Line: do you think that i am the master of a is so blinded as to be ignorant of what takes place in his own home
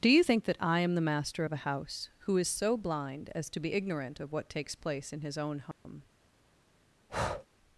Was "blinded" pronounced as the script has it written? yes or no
no